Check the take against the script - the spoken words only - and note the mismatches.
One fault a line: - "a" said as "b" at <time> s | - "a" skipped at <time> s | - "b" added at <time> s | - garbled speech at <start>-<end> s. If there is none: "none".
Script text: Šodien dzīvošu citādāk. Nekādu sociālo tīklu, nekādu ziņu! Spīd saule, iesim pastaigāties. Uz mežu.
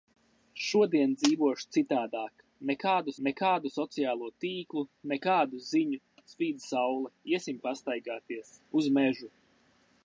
- "nekādu" added at 3.3 s